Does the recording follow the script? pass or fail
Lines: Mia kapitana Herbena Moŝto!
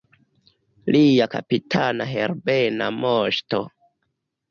fail